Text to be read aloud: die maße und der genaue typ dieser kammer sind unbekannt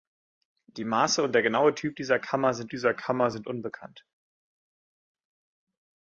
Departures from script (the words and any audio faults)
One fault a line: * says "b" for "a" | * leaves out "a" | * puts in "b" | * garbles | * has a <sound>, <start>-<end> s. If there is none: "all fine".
* puts in "dieser kammer sind"